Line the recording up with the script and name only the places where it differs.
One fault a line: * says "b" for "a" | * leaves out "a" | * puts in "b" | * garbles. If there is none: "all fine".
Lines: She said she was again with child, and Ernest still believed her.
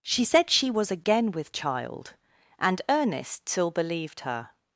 all fine